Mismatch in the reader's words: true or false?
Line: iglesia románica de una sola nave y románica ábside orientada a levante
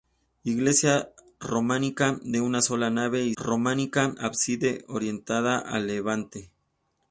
false